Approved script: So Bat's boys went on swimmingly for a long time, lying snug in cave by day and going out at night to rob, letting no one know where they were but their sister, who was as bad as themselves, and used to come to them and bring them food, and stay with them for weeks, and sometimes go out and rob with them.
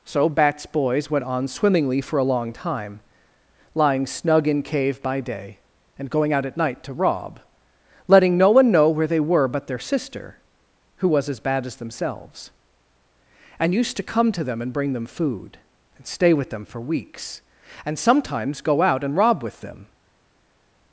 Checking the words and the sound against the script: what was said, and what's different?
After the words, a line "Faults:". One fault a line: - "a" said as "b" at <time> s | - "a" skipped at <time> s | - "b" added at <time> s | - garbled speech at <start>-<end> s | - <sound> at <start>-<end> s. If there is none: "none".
So Bat's boys went on swimmingly for a long time, lying snug in cave by day and going out at night to rob, letting no one know where they were but their sister, who was as bad as themselves, and used to come to them and bring them food, and stay with them for weeks, and sometimes go out and rob with them.
Faults:
none